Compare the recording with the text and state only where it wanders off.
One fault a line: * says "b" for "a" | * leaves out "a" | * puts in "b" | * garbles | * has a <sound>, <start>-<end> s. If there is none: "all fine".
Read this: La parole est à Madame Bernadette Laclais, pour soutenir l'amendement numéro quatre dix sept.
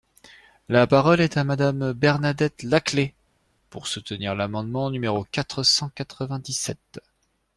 * puts in "cent quatre vingt"